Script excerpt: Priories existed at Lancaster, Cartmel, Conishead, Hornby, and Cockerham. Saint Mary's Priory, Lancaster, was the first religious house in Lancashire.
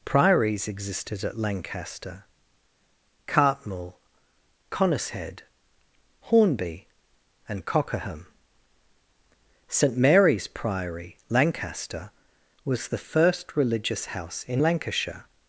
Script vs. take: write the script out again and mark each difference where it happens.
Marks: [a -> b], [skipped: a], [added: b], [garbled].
Priories existed at Lancaster, Cartmel, Conishead, Hornby, and Cockerham. Saint Mary's Priory, Lancaster, was the first religious house in Lancashire.